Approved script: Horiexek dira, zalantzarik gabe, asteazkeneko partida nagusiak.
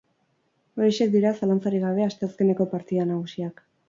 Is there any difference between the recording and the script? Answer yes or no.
no